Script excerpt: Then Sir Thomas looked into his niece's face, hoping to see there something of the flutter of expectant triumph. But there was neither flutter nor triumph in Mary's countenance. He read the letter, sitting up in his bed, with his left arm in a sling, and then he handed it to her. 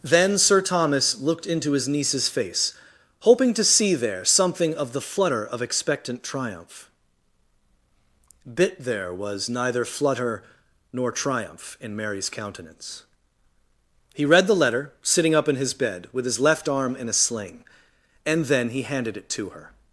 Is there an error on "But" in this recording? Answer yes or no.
yes